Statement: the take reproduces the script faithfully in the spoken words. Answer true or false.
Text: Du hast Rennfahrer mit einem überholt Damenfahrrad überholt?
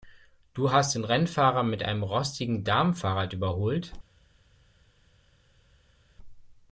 false